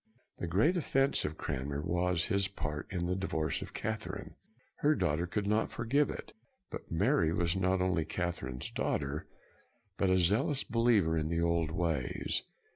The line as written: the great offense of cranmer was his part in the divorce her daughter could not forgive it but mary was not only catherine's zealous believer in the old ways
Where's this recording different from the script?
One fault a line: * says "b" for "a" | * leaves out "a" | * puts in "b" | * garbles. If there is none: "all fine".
* puts in "of catherine"
* puts in "daughter but a"